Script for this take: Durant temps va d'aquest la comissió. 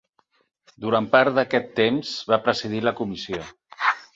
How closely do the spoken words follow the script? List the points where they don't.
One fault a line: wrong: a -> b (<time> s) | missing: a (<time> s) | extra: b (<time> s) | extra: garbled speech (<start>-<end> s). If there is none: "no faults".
extra: part d'aquest (1.1 s)
wrong: d'aquest -> presidir (2.5 s)